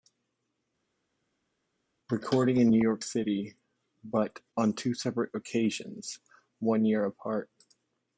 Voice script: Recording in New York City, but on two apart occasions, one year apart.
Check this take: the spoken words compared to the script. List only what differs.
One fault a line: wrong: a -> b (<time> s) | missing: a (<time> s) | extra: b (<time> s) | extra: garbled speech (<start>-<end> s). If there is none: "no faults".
wrong: apart -> separate (4.9 s)